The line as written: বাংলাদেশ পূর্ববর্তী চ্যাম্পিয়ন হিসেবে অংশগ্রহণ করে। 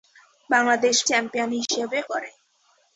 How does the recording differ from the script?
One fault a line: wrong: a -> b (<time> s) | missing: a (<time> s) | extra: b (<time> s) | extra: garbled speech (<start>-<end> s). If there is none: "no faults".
missing: পূর্ববর্তী (1.0 s)
missing: অংশগ্রহণ (2.0 s)